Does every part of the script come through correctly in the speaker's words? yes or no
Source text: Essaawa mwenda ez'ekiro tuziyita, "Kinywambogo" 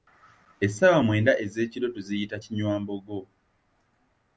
yes